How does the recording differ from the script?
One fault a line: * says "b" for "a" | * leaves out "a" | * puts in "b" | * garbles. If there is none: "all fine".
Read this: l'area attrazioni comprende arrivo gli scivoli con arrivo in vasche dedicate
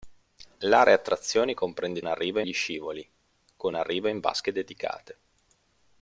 all fine